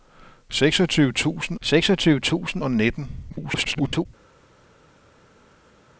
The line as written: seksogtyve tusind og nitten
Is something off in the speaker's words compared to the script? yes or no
yes